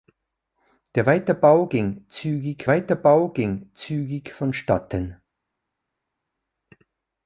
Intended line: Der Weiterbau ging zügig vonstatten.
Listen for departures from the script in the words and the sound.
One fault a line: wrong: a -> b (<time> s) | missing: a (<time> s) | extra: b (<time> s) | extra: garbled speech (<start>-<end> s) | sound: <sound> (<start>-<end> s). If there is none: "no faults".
extra: Weiterbau ging zügig (2.7 s)